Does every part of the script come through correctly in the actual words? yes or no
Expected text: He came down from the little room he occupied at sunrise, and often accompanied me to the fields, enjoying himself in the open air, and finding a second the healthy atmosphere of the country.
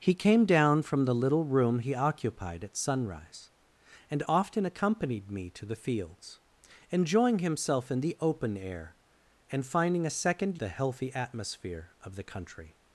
yes